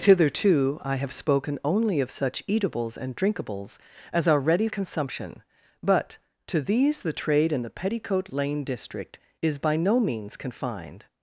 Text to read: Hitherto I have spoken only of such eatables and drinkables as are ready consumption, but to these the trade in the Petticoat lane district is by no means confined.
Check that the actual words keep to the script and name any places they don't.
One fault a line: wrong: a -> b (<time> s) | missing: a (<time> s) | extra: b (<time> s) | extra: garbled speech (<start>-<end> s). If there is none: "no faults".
no faults